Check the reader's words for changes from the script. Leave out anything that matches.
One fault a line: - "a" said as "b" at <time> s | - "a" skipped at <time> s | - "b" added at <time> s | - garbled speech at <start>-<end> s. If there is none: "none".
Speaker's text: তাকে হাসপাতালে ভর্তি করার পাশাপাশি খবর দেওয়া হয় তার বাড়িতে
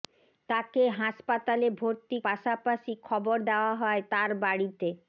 - "করার" skipped at 2.2 s